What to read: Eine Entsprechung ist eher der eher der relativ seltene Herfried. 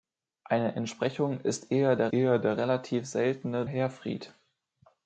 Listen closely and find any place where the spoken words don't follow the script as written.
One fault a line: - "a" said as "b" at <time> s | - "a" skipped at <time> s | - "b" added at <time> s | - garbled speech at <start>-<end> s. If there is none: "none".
none